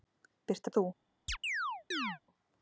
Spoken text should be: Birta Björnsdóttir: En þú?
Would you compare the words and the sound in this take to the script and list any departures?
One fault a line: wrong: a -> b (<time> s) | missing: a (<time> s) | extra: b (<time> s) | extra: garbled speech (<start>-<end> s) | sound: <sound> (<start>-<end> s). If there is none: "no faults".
missing: Björnsdóttir En (0.7 s)
sound: chirp (1.3-2.2 s)